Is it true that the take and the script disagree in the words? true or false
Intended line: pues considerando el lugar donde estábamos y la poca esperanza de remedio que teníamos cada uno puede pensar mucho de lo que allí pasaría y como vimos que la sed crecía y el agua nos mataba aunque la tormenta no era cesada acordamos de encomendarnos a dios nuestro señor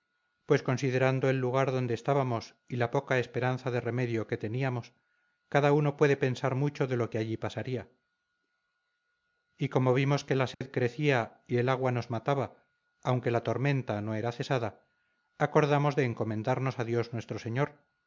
false